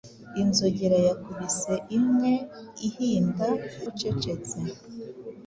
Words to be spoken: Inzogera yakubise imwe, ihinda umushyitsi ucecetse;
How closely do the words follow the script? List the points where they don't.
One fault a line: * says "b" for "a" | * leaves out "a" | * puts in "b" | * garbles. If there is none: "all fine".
* leaves out "umushyitsi"